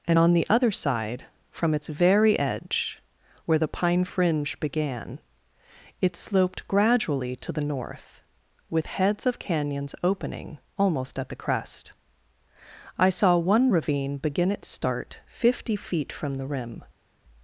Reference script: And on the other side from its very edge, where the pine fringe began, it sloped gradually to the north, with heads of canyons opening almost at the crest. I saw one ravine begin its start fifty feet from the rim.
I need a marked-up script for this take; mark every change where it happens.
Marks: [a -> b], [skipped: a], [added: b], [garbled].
And on the other side from its very edge, where the pine fringe began, it sloped gradually to the north, with heads of canyons opening almost at the crest. I saw one ravine begin its start fifty feet from the rim.